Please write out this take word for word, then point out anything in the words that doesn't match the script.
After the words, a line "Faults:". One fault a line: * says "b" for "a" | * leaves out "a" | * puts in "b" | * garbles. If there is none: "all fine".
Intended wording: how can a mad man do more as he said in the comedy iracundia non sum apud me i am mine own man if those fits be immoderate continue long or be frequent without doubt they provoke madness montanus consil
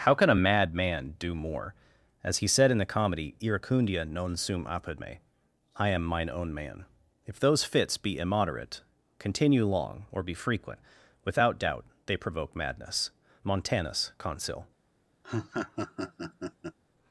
how can a mad man do more as he said in the comedy iracundia non sum apud me i am mine own man if those fits be immoderate continue long or be frequent without doubt they provoke madness montanus consil
Faults:
all fine